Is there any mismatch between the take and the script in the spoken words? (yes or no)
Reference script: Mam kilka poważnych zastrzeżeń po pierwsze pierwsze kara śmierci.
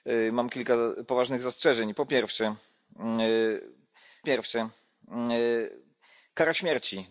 no